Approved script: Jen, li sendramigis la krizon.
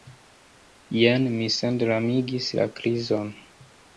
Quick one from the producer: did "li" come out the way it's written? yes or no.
no